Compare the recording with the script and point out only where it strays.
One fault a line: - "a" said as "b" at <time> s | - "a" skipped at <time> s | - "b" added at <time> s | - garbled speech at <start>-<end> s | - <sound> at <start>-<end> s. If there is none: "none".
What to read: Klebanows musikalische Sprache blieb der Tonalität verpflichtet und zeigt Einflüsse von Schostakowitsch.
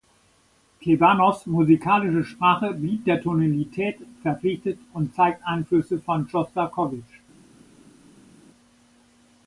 none